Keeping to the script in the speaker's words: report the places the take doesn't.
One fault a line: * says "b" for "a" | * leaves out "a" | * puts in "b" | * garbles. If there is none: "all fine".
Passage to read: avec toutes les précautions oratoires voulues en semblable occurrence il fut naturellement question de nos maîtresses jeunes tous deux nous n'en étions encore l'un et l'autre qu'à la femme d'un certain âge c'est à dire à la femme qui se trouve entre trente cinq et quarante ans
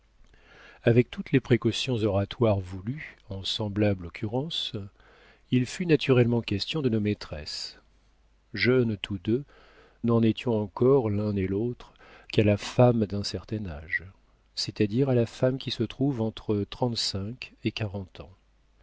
* leaves out "nous"